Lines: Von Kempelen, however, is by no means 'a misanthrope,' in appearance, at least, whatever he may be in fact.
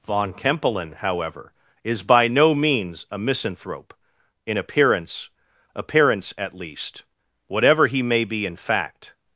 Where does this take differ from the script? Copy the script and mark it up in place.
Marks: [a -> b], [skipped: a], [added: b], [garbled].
Von Kempelen, however, is by no means 'a misanthrope,' in appearance, [added: appearance] at least, whatever he may be in fact.